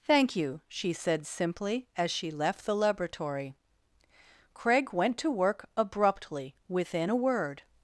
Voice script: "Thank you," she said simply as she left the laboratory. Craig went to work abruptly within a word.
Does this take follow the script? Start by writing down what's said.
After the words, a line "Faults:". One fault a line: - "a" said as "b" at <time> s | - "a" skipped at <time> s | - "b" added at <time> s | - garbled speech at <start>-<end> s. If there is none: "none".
"Thank you," she said simply as she left the laboratory. Craig went to work abruptly within a word.
Faults:
none